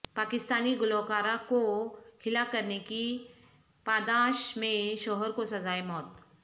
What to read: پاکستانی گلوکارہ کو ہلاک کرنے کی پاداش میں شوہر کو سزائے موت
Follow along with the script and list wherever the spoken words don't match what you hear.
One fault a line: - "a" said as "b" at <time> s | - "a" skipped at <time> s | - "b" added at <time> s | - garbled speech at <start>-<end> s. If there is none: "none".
none